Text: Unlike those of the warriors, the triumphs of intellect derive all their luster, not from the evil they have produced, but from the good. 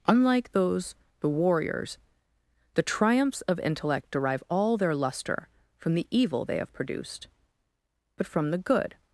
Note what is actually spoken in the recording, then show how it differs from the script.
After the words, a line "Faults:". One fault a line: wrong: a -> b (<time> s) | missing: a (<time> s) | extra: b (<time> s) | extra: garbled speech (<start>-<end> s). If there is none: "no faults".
Unlike those the warriors, the triumphs of intellect derive all their luster, from the evil they have produced, but from the good.
Faults:
missing: of (0.9 s)
missing: not (5.5 s)